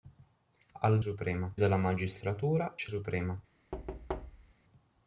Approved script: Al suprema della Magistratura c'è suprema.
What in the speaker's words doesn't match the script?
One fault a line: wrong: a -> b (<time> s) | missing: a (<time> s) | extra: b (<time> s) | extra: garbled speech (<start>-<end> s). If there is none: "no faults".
no faults